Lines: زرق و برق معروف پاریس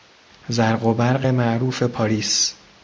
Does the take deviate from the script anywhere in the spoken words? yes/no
no